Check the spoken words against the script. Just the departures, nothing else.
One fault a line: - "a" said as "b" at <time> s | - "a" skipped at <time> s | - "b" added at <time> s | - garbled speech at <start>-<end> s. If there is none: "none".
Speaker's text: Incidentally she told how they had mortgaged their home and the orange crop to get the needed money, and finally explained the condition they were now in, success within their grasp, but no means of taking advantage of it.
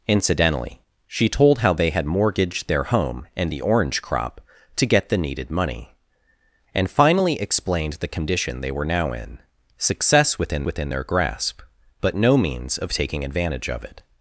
- "within" added at 10.7 s